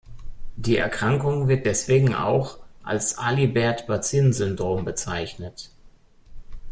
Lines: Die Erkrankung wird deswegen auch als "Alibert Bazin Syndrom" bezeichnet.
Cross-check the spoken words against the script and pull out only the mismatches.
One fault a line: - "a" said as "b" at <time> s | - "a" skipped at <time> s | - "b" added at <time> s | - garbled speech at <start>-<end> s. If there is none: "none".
none